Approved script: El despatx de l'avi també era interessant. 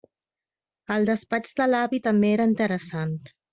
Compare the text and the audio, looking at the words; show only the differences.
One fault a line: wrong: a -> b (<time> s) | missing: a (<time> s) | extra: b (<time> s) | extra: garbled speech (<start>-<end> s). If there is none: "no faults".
no faults